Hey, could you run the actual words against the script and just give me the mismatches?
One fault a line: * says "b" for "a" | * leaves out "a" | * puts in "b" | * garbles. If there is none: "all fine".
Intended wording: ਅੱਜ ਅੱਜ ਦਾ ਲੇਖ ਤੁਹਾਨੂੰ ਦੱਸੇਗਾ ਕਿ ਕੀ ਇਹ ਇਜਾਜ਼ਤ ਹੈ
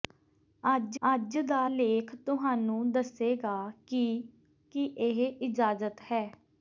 all fine